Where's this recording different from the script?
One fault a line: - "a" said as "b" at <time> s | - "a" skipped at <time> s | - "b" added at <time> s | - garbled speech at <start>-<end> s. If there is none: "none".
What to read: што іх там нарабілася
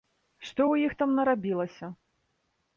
- "ў" added at 0.7 s